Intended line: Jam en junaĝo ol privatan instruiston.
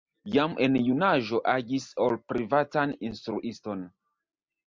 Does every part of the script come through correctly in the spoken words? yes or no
no